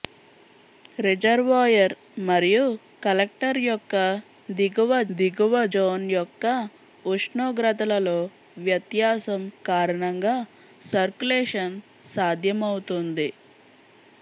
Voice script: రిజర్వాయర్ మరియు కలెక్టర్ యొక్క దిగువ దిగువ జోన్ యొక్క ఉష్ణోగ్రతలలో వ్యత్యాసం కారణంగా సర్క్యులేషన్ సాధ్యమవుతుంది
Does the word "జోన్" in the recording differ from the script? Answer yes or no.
no